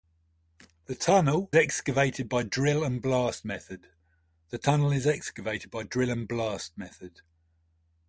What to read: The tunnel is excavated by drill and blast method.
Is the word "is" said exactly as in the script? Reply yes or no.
no